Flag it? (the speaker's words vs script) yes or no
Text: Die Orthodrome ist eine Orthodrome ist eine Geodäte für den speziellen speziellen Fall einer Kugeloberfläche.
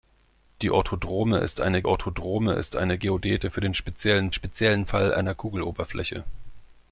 no